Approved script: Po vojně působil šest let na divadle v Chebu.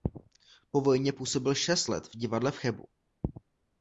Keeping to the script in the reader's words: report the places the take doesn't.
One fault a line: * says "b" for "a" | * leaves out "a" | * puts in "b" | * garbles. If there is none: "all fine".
* says "v" for "na"